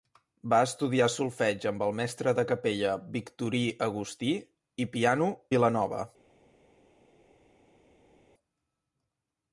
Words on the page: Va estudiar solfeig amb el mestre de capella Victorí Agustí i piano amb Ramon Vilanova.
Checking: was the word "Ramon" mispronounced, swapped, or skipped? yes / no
yes